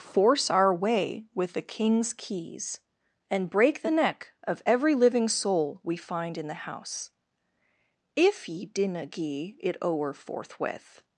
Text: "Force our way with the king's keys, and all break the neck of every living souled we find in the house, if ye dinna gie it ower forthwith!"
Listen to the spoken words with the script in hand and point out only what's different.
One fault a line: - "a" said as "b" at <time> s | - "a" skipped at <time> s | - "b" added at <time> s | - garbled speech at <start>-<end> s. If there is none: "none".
- "all" skipped at 3.5 s
- "souled" said as "soul" at 5.3 s